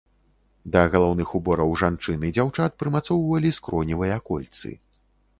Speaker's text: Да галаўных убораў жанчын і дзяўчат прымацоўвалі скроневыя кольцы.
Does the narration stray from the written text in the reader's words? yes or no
no